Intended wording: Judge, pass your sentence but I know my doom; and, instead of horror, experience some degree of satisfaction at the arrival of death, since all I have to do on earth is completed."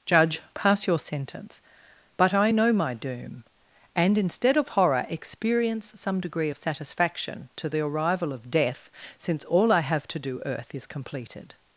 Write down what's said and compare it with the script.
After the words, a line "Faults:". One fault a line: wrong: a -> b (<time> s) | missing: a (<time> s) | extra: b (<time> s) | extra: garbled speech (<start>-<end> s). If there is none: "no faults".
Judge, pass your sentence but I know my doom; and, instead of horror, experience some degree of satisfaction to the arrival of death, since all I have to do earth is completed."
Faults:
wrong: at -> to (7.6 s)
missing: on (10.4 s)